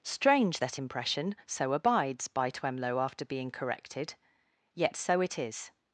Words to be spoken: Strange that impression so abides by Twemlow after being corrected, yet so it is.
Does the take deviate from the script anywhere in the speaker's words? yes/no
no